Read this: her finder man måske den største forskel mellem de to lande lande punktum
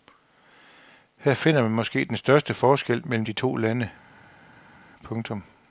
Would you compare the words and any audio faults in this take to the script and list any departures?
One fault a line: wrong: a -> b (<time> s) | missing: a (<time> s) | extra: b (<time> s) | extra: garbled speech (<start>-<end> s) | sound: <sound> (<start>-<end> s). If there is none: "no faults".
missing: lande (3.9 s)